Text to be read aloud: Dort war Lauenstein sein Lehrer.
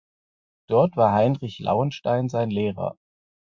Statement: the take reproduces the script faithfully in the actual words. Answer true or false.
false